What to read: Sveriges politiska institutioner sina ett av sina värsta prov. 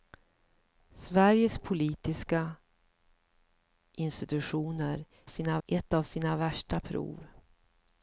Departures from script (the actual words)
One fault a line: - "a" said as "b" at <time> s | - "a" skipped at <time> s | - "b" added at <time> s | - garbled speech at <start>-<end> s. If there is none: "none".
none